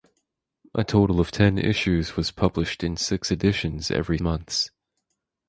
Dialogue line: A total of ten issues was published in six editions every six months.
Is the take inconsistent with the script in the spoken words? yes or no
yes